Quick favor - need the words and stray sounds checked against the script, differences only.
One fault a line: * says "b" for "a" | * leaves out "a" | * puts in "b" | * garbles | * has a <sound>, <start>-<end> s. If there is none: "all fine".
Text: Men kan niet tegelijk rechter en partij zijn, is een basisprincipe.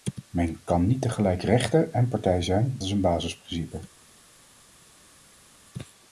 all fine